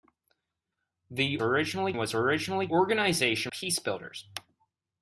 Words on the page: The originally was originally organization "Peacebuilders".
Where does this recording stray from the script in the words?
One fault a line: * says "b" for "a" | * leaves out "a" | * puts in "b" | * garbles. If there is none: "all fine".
all fine